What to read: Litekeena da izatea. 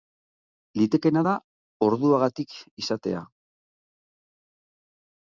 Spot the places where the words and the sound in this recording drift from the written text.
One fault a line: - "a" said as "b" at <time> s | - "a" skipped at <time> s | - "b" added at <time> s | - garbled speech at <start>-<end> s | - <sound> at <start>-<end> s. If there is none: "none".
- "orduagatik" added at 1.9 s